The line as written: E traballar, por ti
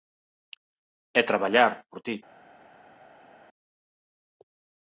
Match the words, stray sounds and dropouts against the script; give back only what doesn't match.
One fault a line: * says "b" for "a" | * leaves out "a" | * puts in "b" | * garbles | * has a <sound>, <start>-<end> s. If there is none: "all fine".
all fine